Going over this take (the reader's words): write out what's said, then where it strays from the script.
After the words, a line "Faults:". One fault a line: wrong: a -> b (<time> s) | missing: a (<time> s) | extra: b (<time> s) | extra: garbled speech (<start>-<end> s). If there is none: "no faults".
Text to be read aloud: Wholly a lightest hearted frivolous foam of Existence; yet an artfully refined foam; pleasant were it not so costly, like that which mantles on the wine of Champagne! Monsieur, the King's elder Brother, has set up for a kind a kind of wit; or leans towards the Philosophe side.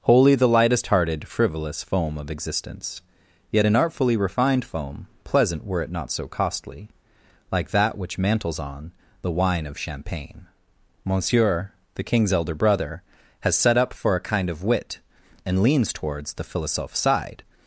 Wholly the lightest hearted frivolous foam of Existence; yet an artfully refined foam; pleasant were it not so costly, like that which mantles on the wine of Champagne! Monsieur, the King's elder Brother, has set up for a kind of wit; and leans towards the Philosophe side.
Faults:
wrong: a -> the (0.3 s)
missing: a kind (14.5 s)
wrong: or -> and (15.4 s)